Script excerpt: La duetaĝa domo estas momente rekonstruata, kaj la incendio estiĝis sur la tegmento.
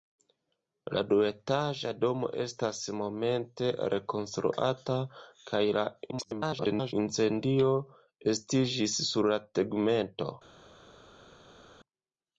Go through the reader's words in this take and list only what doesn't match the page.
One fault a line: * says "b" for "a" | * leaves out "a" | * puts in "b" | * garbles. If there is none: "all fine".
* garbles